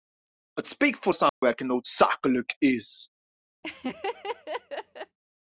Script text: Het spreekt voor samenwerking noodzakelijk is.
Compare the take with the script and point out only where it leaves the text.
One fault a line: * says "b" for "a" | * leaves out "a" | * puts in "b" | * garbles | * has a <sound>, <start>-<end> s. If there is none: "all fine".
* has a dropout, 1.3-1.4 s
* has a laugh, 3.6-5.2 s